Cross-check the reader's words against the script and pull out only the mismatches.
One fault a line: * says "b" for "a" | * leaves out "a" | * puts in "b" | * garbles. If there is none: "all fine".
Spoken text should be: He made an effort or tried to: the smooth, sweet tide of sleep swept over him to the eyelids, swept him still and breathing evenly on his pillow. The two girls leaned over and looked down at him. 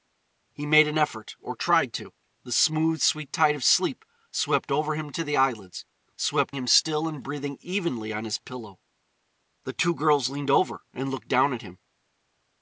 all fine